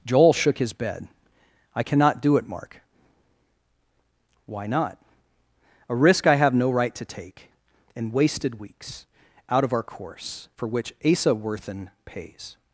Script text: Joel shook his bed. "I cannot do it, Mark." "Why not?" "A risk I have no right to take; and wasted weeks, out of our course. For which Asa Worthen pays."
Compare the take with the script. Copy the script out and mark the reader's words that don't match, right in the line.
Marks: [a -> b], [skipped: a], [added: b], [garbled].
Joel shook his bed. "I cannot do it, Mark." "Why not?" "A risk I have no right to take; and wasted weeks, out of our course. For which Asa Worthen pays."